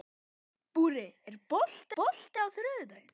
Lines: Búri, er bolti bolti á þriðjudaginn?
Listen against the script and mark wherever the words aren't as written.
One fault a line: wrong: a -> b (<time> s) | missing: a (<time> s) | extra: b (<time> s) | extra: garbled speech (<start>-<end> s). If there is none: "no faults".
no faults